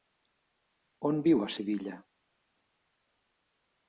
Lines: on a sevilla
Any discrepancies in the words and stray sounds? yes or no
yes